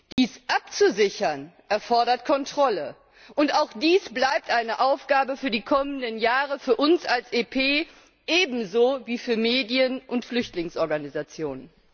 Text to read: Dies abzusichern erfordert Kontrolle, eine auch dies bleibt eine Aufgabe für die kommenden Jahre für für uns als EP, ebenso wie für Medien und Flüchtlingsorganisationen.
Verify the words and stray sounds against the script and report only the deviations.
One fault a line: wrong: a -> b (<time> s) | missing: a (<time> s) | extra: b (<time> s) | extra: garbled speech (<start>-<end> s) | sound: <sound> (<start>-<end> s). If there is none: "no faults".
sound: dropout (0.1-0.2 s)
wrong: eine -> und (3.4 s)
missing: für (6.8 s)